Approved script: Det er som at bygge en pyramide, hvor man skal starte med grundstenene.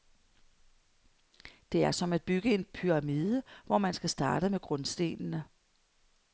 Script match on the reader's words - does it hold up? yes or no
yes